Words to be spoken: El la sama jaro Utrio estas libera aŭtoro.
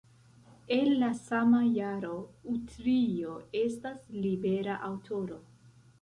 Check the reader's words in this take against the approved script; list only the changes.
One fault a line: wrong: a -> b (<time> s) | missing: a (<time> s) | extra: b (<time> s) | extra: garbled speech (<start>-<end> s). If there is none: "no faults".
no faults